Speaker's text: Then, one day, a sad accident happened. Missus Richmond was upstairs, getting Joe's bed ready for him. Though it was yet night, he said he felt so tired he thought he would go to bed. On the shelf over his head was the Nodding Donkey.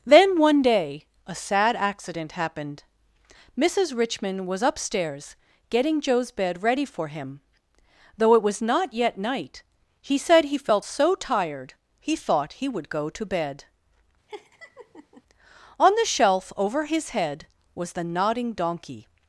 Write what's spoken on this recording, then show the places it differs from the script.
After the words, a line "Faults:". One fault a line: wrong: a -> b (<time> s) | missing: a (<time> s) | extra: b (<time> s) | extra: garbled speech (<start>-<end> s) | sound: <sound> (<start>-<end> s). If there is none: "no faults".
Then, one day, a sad accident happened. Missus Richmond was upstairs, getting Joe's bed ready for him. Though it was not yet night, he said he felt so tired he thought he would go to bed. On the shelf over his head was the Nodding Donkey.
Faults:
extra: not (8.6 s)
sound: laugh (14.3-15.2 s)